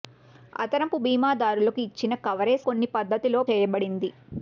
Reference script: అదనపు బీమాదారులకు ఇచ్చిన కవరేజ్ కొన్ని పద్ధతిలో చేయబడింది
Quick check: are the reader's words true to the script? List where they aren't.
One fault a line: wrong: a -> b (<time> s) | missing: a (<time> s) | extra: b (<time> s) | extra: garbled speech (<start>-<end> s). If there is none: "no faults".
no faults